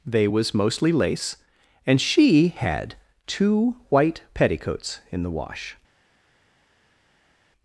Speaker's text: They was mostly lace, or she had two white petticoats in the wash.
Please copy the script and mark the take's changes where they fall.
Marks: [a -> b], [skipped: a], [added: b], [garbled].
They was mostly lace, [or -> and] she had two white petticoats in the wash.